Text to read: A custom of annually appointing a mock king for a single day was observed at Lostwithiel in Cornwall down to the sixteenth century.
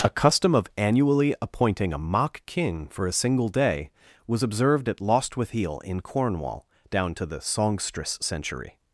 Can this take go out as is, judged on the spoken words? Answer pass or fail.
fail